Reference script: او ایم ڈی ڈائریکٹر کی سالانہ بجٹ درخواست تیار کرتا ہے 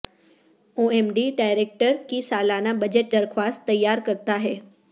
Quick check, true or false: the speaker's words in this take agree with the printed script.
true